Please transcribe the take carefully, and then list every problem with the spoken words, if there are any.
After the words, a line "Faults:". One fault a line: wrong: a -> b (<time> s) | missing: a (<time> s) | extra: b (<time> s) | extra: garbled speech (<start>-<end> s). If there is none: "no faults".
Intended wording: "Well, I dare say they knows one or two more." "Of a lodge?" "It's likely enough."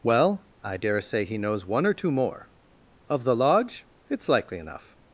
"Well, I dare say he knows one or two more." "Of the lodge?" "It's likely enough."
Faults:
wrong: they -> he (1.2 s)
wrong: a -> the (3.2 s)